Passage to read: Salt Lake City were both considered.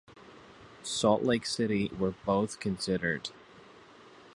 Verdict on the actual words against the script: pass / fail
pass